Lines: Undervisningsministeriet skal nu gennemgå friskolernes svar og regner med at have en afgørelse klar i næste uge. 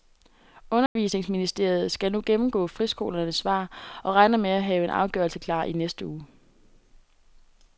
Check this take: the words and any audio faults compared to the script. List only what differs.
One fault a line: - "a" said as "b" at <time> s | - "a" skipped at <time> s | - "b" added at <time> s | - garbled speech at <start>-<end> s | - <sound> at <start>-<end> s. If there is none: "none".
- dropout at 0.9-1.0 s